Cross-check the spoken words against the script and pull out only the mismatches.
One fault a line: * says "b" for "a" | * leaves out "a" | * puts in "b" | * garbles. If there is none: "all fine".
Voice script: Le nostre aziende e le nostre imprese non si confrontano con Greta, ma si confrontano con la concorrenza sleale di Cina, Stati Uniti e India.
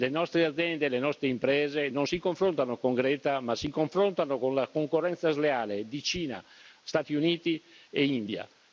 all fine